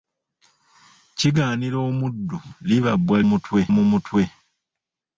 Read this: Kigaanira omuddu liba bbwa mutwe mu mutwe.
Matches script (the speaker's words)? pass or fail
pass